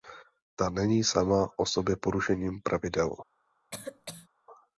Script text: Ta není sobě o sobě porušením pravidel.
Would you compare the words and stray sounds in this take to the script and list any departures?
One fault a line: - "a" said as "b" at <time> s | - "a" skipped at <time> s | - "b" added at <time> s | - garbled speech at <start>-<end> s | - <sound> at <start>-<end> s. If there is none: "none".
- "sobě" said as "sama" at 1.0 s
- cough at 3.7-4.3 s